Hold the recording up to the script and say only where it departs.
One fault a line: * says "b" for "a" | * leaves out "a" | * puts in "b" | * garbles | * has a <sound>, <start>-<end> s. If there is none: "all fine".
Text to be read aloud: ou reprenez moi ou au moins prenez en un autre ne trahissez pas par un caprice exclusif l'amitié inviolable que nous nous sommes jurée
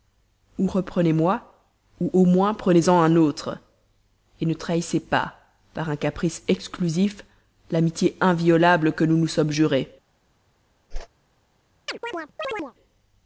* has a whoosh, 10.9-11.1 s
* has a chirp, 11.9-12.7 s